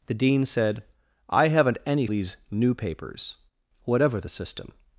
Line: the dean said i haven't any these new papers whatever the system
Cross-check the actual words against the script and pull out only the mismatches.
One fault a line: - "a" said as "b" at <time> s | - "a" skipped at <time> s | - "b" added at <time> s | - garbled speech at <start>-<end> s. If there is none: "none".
none